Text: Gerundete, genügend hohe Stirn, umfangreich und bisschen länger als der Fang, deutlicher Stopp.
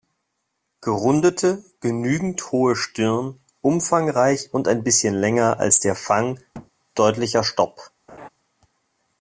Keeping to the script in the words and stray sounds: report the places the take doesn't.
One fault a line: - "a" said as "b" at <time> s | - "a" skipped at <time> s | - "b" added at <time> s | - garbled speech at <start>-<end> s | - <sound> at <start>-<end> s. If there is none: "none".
- "ein" added at 4.7 s
- thud at 6.5-6.7 s
- laugh at 8.1-8.3 s